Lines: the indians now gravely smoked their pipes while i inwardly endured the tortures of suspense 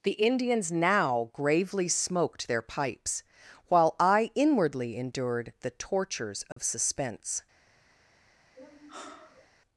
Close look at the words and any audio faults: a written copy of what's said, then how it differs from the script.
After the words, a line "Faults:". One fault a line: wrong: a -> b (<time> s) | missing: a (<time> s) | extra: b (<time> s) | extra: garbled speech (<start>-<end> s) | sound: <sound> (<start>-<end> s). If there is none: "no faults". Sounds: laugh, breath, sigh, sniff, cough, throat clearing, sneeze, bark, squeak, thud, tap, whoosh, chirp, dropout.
the indians now gravely smoked their pipes while i inwardly endured the tortures of suspense
Faults:
sound: dropout (6.5-6.6 s)
sound: sigh (8.5-9.5 s)